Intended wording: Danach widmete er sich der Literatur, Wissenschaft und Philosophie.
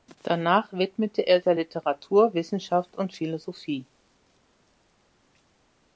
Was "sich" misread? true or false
true